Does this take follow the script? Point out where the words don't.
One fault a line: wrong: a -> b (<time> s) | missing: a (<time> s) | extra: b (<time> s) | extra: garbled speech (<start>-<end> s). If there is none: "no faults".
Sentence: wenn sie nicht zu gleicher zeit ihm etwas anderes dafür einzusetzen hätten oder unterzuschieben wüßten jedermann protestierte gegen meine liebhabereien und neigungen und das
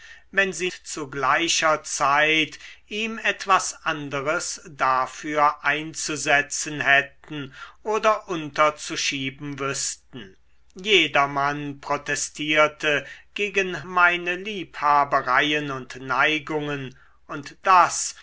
missing: nicht (0.7 s)